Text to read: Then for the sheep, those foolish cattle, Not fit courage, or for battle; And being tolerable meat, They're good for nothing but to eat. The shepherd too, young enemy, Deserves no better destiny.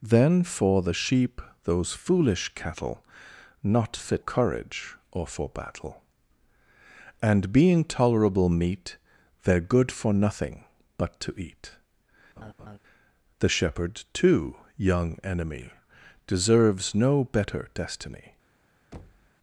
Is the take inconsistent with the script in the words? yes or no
no